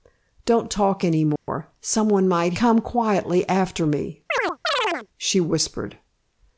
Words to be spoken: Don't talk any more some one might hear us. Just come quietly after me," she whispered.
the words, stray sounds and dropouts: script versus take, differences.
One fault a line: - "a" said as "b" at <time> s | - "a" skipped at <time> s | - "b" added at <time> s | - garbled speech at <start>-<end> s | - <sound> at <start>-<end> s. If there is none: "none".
- dropout at 1.4-1.5 s
- "hear us Just" skipped at 2.5 s
- chirp at 4.3-5.1 s